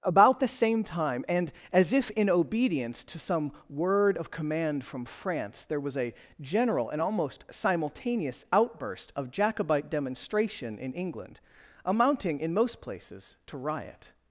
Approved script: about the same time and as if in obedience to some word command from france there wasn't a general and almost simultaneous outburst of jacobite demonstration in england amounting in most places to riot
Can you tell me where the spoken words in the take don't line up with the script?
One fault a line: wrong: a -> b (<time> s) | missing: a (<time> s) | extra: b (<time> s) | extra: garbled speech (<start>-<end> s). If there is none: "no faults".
extra: of (4.2 s)
wrong: wasn't -> was (5.8 s)